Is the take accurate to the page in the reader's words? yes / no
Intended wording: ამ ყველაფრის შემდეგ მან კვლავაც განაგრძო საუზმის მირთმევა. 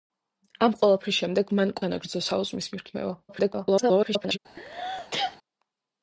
no